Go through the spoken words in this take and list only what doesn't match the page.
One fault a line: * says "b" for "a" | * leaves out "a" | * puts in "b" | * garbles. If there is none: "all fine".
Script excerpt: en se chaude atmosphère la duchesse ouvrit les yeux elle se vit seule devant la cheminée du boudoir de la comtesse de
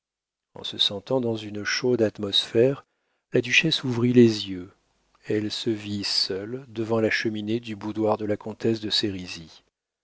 * puts in "sentant dans une"